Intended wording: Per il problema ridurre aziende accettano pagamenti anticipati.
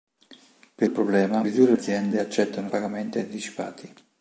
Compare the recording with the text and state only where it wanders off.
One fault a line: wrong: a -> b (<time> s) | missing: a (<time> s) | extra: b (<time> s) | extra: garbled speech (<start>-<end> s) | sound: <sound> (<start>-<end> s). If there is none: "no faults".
no faults